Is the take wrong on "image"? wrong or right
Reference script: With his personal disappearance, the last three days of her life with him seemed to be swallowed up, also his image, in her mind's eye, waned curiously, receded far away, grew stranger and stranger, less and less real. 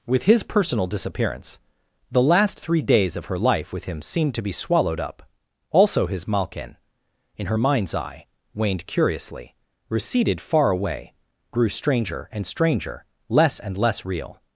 wrong